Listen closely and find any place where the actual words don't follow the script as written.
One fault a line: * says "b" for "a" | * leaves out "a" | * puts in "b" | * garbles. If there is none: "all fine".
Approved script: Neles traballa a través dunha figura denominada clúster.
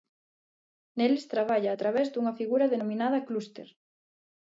all fine